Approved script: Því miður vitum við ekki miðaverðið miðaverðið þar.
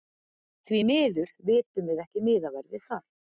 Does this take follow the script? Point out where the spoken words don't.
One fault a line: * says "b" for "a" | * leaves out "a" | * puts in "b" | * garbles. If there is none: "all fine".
* leaves out "miðaverðið"